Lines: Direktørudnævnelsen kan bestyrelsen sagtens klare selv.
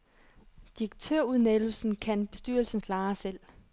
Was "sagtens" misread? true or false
true